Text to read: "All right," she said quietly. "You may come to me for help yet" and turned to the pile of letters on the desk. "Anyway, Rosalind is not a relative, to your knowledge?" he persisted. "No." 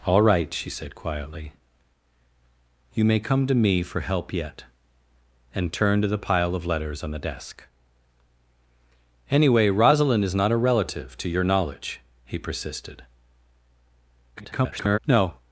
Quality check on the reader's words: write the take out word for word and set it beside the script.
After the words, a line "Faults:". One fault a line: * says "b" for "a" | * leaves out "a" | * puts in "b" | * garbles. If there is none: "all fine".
"All right," she said quietly. "You may come to me for help yet" and turned to the pile of letters on the desk. "Anyway, Rosalind is not a relative, to your knowledge?" he persisted. [garbled] "No."
Faults:
* garbles